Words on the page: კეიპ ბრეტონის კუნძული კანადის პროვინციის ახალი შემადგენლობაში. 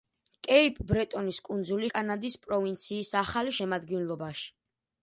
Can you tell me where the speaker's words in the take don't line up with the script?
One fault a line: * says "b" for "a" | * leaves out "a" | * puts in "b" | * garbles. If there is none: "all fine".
all fine